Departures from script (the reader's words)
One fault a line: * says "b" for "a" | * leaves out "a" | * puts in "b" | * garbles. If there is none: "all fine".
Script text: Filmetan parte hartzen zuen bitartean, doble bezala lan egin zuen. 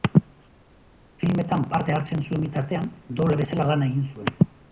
all fine